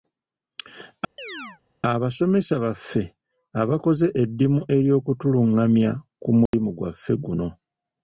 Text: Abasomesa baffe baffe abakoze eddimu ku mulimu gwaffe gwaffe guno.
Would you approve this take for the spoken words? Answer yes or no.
no